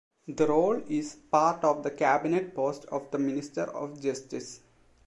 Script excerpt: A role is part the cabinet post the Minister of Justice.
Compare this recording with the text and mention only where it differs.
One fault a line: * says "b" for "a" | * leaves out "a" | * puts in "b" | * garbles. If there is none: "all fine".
* says "The" for "A"
* puts in "of"
* puts in "of"